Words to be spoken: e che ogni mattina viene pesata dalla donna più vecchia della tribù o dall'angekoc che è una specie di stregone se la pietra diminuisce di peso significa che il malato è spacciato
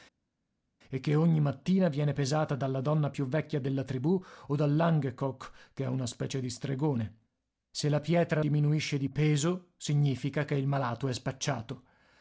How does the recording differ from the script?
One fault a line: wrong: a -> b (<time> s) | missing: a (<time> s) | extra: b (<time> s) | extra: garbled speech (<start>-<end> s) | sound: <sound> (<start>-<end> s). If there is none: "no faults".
no faults